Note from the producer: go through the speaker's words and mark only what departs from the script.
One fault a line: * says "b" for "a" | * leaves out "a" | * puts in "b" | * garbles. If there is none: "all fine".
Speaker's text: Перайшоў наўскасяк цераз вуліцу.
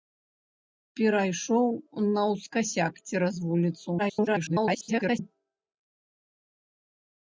* garbles